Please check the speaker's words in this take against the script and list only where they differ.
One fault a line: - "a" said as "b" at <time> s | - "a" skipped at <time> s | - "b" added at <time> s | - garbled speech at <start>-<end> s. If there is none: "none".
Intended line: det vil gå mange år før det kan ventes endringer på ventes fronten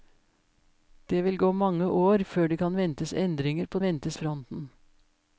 none